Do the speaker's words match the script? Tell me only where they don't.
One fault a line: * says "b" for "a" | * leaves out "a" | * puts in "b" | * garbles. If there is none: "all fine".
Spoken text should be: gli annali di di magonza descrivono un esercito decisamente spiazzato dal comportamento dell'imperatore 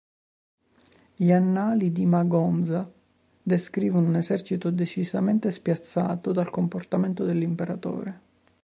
* leaves out "di"